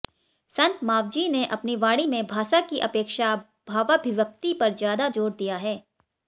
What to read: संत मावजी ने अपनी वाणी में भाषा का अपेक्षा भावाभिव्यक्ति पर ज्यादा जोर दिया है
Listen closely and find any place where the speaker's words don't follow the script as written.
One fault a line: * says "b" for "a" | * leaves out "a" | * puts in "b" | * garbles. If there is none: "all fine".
* says "की" for "का"